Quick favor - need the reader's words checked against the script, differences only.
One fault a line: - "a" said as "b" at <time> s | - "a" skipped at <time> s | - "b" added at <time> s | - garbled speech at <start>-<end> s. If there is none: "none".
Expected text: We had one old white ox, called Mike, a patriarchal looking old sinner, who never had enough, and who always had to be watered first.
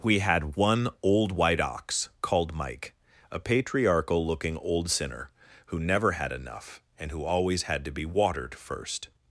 none